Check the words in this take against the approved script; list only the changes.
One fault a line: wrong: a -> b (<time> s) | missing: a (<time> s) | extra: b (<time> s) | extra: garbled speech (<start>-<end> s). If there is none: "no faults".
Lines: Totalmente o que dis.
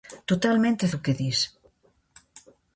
no faults